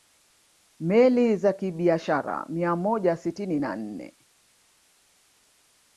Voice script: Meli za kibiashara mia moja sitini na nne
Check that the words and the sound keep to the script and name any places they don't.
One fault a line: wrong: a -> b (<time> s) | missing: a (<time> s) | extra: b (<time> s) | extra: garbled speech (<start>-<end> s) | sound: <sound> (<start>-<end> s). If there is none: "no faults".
no faults